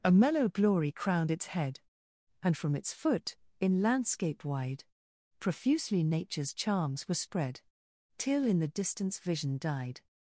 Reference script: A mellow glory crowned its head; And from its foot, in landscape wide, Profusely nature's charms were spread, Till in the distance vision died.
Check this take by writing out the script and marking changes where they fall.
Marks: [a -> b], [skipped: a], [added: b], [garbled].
A mellow glory crowned its head; And from its foot, in landscape wide, Profusely nature's charms were spread, Till in the distance vision died.